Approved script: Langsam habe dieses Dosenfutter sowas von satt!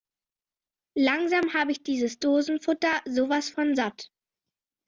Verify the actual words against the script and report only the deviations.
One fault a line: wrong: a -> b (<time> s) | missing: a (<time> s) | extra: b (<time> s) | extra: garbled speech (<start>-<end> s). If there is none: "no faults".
extra: ich (1.7 s)